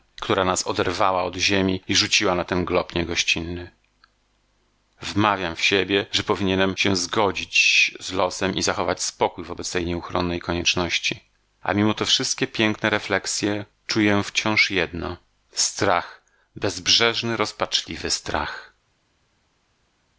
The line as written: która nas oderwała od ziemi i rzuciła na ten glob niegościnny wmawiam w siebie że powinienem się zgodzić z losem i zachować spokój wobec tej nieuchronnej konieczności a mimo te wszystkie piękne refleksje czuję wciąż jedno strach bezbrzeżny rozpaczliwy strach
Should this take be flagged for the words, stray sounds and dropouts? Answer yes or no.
no